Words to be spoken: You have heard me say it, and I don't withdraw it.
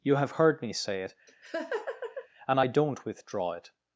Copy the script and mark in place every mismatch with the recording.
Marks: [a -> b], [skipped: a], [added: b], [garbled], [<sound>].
You have heard me say it, [laugh] and I don't withdraw it.